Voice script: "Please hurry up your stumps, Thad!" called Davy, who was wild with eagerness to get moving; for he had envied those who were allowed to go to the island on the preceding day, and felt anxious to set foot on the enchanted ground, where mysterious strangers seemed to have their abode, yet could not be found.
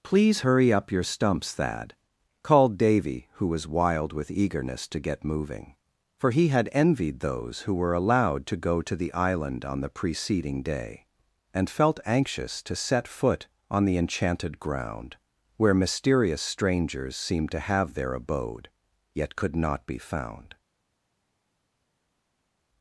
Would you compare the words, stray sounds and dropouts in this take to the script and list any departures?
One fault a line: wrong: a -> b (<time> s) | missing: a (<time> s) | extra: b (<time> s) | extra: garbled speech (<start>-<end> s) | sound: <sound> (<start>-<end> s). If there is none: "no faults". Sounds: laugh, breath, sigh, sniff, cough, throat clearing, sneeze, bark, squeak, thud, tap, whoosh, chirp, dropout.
no faults